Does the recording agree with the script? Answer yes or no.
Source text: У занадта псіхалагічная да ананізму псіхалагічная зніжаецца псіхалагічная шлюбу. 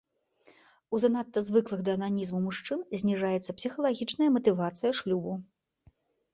no